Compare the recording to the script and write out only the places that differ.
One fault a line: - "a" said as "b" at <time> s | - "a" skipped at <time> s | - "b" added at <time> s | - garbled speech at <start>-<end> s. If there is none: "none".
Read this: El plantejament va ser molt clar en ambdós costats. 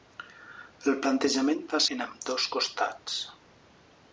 - "ser molt clar" skipped at 1.8 s